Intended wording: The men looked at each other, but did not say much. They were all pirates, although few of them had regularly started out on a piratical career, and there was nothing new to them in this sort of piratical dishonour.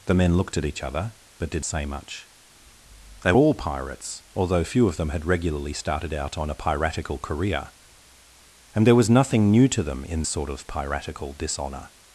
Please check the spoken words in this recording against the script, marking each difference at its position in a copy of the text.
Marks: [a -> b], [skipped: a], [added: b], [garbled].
The men looked at each other, but did [skipped: not] say much. They [skipped: were] all pirates, although few of them had regularly started out on a piratical career, and there was nothing new to them in [skipped: this] sort of piratical dishonour.